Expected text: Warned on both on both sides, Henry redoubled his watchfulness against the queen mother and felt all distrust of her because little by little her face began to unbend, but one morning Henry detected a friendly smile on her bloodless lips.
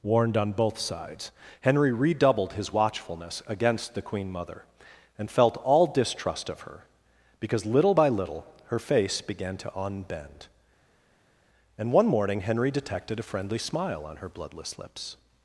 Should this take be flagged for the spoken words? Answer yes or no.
yes